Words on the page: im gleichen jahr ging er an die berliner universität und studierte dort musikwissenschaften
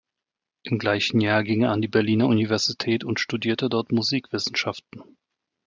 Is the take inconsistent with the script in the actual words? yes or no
no